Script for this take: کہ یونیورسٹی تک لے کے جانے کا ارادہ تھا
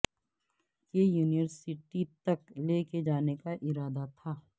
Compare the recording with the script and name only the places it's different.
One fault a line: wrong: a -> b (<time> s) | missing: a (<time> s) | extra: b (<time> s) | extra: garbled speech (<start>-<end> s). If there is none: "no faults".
no faults